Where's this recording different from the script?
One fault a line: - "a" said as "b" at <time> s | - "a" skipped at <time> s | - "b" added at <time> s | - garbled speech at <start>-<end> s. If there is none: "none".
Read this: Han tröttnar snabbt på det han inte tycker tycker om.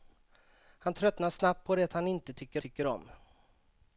none